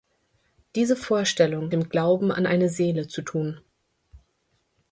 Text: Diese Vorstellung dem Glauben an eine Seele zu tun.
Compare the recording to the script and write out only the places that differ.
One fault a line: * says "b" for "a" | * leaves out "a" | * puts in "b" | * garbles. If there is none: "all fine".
all fine